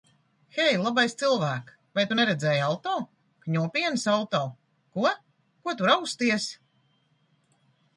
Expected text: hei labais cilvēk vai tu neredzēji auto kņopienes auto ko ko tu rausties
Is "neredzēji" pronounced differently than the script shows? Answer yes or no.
no